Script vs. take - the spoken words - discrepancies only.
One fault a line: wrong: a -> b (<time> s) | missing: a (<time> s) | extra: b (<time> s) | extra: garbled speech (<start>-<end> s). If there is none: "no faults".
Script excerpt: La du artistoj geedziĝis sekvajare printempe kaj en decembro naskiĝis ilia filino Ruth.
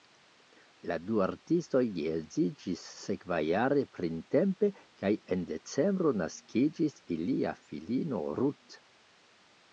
no faults